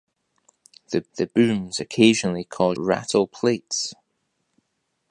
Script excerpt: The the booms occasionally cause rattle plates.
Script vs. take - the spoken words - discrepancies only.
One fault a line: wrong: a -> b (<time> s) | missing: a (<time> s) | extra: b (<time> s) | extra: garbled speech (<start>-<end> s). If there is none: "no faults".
no faults